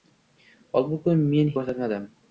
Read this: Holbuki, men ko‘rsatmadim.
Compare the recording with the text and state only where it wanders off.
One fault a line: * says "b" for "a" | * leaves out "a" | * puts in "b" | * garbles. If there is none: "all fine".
all fine